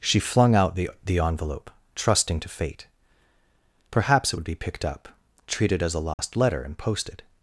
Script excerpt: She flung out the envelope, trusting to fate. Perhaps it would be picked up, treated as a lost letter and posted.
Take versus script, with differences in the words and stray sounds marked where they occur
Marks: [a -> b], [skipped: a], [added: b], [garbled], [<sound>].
She flung out the [added: the] envelope, trusting to fate. Perhaps it would be picked up, treated as a lost [dropout] letter and posted.